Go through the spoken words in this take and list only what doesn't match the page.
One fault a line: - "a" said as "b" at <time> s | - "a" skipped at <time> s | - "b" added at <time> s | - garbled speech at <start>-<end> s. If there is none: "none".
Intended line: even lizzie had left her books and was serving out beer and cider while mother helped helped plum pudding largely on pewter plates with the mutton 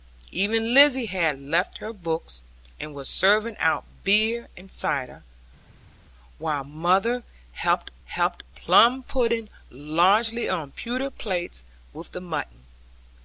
none